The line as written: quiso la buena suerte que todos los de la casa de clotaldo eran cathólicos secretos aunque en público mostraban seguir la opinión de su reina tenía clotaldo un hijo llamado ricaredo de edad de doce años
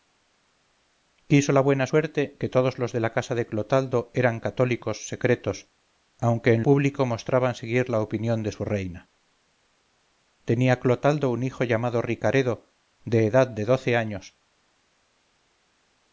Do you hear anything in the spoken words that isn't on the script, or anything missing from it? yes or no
no